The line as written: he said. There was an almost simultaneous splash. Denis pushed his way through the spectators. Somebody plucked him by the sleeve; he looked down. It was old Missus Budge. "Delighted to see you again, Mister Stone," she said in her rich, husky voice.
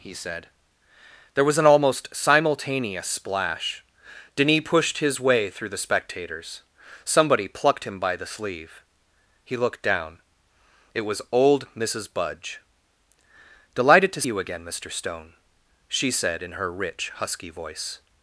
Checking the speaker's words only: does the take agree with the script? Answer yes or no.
no